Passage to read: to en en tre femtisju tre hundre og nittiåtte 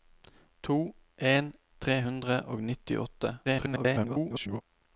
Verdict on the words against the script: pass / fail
fail